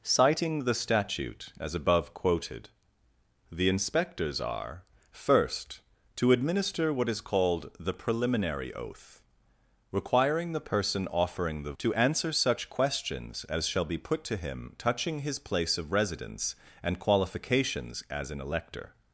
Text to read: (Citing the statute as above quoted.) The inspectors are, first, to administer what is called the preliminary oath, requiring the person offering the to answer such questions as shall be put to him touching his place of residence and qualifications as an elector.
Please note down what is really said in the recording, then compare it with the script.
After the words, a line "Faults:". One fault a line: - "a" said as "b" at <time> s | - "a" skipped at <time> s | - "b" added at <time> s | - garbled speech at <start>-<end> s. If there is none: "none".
(Citing the statute as above quoted.) The inspectors are, first, to administer what is called the preliminary oath, requiring the person offering the to answer such questions as shall be put to him touching his place of residence and qualifications as an elector.
Faults:
none